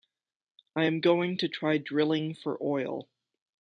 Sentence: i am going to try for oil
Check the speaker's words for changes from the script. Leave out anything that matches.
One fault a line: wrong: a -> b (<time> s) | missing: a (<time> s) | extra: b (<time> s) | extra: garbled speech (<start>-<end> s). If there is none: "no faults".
extra: drilling (1.8 s)